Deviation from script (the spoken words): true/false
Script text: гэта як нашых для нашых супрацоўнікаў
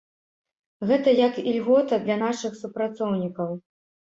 true